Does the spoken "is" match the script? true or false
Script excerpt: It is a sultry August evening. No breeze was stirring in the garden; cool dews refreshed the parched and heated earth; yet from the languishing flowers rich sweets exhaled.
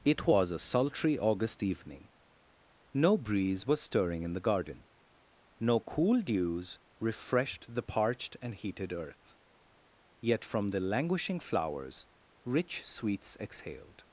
false